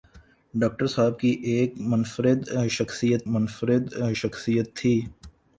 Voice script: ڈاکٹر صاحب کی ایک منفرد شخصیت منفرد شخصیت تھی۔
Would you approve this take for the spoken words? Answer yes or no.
yes